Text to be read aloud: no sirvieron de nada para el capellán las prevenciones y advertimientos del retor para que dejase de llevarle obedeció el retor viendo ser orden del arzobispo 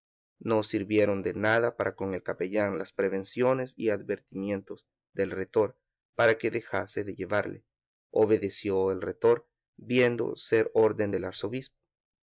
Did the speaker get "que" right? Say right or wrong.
right